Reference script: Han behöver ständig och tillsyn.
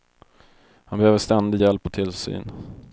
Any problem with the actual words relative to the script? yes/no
yes